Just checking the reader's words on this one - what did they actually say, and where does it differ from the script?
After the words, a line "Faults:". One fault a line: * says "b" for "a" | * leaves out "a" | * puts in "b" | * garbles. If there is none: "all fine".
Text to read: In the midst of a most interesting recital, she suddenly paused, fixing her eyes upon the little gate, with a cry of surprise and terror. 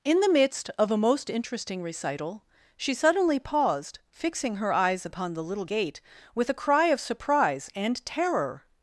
In the midst of a most interesting recital, she suddenly paused, fixing her eyes upon the little gate, with a cry of surprise and terror.
Faults:
all fine